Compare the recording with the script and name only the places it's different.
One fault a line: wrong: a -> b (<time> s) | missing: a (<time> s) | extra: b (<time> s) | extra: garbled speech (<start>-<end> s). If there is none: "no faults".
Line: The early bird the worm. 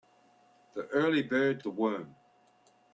no faults